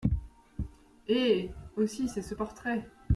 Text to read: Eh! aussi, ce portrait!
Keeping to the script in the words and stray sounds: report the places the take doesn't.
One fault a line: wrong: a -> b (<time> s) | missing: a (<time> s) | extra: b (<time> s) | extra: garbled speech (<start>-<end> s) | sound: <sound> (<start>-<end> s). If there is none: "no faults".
extra: c'est (2.1 s)